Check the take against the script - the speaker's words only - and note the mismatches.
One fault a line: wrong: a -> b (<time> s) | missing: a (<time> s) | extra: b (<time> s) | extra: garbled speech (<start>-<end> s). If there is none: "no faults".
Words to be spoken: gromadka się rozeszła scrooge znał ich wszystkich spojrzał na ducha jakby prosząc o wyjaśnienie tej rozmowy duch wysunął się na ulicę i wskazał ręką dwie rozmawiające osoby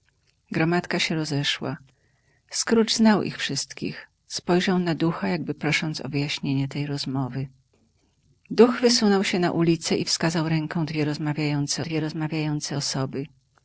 extra: dwie rozmawiające (11.8 s)